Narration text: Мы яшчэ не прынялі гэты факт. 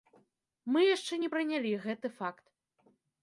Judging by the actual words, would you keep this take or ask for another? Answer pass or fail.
pass